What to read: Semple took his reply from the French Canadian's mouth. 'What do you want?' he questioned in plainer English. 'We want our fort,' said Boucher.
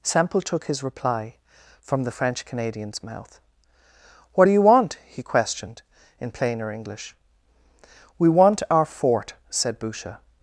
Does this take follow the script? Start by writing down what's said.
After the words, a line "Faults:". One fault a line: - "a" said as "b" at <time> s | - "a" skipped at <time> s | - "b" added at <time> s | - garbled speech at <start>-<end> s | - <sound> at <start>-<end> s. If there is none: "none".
Semple took his reply from the French Canadian's mouth. 'What do you want?' he questioned in plainer English. 'We want our fort,' said Boucher.
Faults:
none